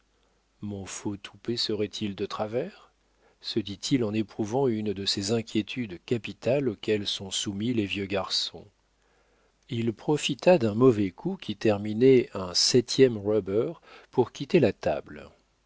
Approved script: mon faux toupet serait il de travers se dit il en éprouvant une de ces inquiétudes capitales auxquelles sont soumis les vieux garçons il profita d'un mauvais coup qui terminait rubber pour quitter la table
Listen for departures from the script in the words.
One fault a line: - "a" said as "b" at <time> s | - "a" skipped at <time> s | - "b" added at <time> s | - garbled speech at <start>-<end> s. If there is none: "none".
- "un septième" added at 12.3 s